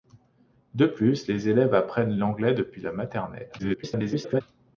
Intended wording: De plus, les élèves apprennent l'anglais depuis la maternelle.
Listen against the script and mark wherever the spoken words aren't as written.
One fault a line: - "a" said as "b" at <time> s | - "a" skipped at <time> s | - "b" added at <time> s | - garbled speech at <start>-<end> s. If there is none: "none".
- garbled speech at 3.6-4.4 s